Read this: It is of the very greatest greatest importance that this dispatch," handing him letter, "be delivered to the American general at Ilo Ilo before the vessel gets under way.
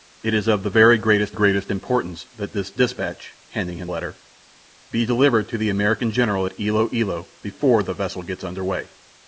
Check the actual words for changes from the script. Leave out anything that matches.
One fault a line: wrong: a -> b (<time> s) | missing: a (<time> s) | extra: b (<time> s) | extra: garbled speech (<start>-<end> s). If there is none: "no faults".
no faults